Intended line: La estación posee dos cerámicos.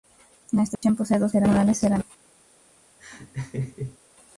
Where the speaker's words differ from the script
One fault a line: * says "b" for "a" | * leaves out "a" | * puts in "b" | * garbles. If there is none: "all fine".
all fine